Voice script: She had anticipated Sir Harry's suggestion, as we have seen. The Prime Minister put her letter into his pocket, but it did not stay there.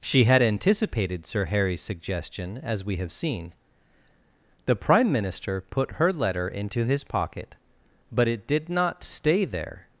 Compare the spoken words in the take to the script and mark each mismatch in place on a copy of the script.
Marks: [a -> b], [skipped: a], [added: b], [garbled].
She had anticipated Sir Harry's suggestion, as we have seen. The Prime Minister put her letter into his pocket, but it did not stay there.